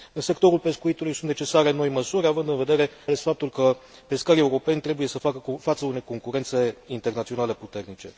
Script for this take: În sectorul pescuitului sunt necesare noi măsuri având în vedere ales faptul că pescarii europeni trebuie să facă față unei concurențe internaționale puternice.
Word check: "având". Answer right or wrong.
right